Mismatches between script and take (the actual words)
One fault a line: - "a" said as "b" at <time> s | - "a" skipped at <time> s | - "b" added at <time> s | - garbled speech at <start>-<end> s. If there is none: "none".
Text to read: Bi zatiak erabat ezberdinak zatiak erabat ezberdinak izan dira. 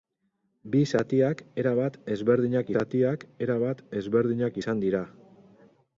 none